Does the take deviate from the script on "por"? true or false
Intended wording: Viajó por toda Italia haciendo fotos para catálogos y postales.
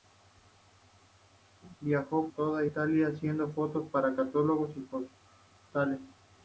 true